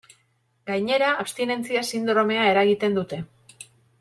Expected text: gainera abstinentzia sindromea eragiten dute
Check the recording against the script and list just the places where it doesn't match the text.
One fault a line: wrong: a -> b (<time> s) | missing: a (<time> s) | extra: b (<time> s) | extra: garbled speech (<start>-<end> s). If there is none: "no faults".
no faults